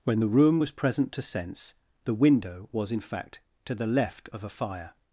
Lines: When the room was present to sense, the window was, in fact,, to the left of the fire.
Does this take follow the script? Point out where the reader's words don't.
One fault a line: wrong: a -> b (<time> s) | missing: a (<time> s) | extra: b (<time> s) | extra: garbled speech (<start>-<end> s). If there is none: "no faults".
wrong: the -> a (4.4 s)